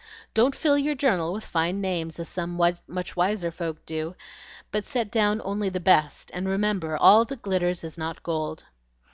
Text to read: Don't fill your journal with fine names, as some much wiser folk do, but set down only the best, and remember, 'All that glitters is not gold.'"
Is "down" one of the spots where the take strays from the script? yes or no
no